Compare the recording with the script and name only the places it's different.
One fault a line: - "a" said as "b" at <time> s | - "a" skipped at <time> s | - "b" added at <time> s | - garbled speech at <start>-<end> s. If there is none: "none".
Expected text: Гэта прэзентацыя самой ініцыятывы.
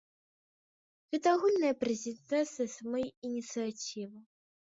- "агульная" added at 1.4 s